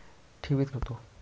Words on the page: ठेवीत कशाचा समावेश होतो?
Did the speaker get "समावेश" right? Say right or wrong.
wrong